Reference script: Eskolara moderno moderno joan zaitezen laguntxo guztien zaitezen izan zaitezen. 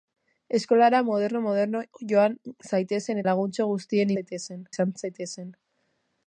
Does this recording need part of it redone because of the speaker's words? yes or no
no